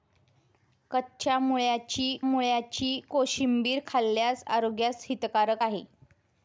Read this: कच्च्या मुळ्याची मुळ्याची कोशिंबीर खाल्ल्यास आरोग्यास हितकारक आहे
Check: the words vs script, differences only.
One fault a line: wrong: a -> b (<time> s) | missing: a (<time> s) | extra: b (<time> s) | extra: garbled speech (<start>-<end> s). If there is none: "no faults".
no faults